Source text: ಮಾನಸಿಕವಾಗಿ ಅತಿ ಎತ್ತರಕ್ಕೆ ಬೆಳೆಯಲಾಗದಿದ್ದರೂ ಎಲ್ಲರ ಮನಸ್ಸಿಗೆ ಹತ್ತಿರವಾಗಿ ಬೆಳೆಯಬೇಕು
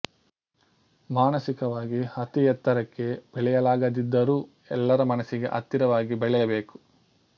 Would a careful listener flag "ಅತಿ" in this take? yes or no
no